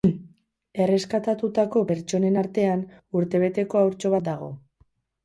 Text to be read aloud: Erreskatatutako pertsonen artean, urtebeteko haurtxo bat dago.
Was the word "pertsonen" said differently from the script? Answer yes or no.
no